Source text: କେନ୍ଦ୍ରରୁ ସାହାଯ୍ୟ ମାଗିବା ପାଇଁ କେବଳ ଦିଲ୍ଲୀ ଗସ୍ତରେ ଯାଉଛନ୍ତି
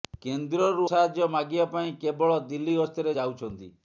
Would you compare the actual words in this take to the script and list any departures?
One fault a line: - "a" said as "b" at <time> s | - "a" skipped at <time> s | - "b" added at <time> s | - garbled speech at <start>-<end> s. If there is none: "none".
none